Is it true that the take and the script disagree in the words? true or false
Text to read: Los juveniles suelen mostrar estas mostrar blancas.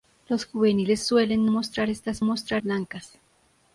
false